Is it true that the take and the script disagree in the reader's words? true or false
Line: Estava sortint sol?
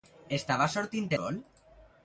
false